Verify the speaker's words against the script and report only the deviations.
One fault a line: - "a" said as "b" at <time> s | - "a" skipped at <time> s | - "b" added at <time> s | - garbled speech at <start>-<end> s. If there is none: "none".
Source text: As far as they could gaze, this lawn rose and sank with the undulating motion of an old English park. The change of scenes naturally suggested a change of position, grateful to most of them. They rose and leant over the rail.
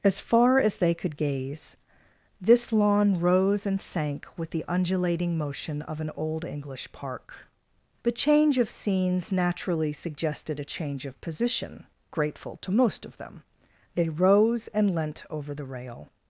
none